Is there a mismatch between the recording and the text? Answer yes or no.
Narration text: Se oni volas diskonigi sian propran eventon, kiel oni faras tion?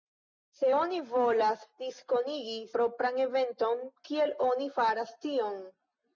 yes